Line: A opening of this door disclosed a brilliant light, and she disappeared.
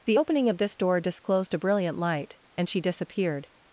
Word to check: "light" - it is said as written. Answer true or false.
true